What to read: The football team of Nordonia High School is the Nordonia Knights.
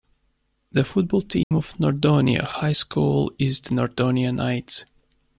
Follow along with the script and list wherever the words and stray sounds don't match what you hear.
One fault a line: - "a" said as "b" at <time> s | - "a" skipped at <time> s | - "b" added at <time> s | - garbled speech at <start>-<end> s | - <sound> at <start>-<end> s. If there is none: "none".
- dropout at 1.4-1.5 s